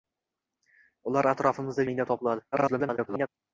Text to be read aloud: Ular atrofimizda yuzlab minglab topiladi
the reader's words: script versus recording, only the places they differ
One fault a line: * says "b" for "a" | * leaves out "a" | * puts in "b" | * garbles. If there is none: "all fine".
* leaves out "yuzlab"
* garbles